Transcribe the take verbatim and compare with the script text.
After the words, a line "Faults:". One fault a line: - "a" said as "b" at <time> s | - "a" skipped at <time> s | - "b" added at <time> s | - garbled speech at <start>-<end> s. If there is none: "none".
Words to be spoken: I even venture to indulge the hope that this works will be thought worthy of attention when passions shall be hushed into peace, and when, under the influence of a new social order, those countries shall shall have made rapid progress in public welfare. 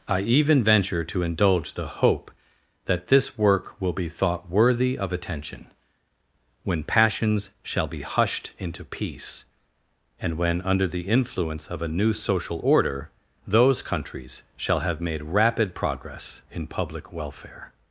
I even venture to indulge the hope that this work will be thought worthy of attention when passions shall be hushed into peace, and when, under the influence of a new social order, those countries shall have made rapid progress in public welfare.
Faults:
- "works" said as "work" at 3.4 s
- "shall" skipped at 14.8 s